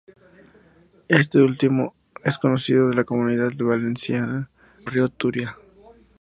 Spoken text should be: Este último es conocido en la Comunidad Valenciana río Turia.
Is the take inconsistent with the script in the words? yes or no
no